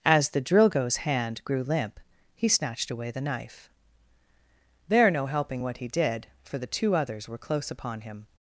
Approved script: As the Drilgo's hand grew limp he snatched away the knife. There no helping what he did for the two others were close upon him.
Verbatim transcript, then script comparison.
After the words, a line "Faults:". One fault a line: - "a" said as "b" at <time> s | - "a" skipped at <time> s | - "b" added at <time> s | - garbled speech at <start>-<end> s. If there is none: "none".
As the Drilgo's hand grew limp he snatched away the knife. There no helping what he did for the two others were close upon him.
Faults:
none